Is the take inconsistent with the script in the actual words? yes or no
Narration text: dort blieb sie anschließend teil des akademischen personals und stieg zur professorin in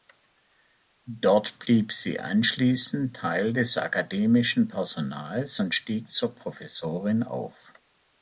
yes